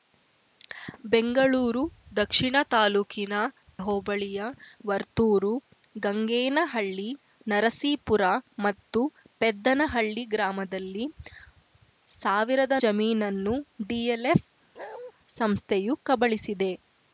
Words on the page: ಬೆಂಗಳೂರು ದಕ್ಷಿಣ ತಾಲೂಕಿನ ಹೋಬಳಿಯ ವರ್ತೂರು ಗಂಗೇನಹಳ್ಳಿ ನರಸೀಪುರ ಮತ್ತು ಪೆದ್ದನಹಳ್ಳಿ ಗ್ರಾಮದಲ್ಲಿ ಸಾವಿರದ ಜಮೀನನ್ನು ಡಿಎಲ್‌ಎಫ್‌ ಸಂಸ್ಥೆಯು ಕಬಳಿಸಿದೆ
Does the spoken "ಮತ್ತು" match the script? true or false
true